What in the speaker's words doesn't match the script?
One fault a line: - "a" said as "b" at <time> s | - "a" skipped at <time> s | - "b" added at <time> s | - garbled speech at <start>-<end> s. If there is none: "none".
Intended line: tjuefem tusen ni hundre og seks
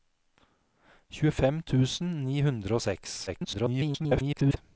- garbled speech at 3.3-4.6 s